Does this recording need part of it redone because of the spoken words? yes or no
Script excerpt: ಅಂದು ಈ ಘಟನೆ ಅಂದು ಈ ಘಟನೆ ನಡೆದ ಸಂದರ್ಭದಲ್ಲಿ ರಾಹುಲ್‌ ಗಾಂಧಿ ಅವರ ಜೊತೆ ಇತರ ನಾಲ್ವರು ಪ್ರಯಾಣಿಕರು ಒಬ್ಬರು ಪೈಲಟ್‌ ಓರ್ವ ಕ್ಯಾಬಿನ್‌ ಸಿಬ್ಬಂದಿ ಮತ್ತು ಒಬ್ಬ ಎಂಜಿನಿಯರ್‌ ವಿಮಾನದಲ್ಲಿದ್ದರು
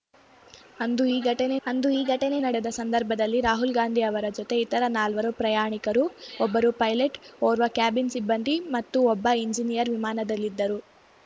no